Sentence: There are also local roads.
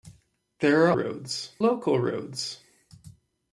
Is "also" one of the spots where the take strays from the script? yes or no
yes